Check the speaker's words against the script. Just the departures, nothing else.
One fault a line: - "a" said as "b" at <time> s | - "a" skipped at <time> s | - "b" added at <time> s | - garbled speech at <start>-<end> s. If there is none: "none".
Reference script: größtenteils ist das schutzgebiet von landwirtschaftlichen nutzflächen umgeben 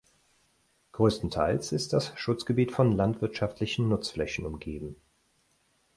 none